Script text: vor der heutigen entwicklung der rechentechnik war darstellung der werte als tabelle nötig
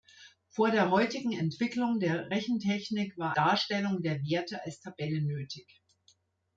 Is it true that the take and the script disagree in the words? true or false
false